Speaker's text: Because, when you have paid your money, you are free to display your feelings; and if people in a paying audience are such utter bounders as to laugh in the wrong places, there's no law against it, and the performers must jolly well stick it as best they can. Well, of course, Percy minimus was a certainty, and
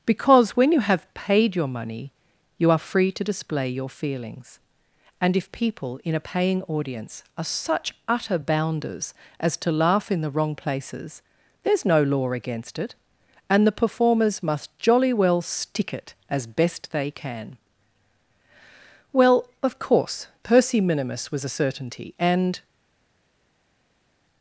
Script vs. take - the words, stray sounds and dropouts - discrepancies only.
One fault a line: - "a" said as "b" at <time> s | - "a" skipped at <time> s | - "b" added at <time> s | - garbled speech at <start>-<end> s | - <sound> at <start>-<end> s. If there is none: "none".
none